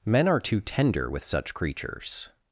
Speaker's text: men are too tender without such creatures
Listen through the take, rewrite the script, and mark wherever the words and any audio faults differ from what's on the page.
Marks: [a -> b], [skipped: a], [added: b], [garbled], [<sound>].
men are too tender [without -> with] such creatures